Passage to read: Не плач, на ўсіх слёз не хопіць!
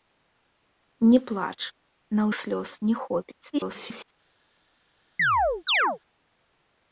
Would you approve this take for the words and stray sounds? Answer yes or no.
no